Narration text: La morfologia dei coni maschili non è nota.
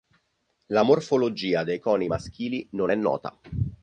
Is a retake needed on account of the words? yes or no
no